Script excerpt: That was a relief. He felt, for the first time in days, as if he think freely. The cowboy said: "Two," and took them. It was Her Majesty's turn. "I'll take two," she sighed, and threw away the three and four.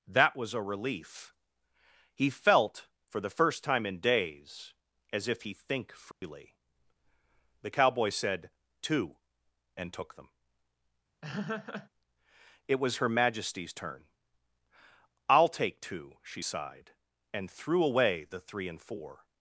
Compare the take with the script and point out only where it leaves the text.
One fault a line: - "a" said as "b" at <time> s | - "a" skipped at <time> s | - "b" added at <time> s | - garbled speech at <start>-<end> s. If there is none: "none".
none